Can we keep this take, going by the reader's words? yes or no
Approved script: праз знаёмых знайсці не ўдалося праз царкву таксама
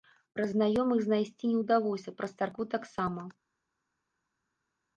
yes